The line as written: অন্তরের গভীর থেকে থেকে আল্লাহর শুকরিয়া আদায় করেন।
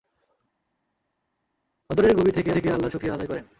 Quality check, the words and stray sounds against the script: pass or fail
pass